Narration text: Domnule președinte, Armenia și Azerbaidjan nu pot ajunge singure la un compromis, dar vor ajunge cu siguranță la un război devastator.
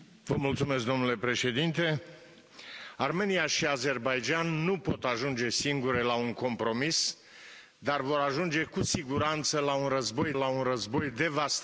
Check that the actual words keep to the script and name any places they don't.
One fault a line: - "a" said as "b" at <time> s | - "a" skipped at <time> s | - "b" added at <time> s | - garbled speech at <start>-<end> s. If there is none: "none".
- "la un război" added at 10.3 s